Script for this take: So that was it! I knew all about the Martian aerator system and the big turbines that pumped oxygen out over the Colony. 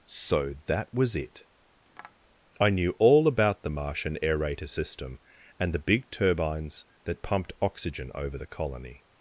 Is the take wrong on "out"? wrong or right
wrong